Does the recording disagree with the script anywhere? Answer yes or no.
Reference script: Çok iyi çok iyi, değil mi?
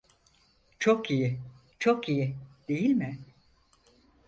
no